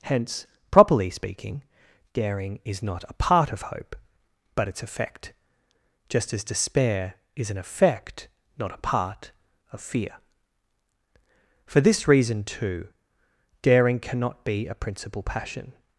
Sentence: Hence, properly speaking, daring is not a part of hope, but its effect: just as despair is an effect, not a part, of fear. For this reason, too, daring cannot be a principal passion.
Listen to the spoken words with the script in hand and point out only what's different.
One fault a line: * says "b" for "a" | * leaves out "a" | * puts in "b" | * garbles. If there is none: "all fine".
all fine